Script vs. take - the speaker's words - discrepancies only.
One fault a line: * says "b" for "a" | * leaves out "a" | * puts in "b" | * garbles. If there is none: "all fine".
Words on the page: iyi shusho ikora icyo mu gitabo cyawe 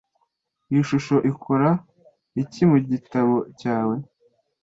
* says "iki" for "icyo"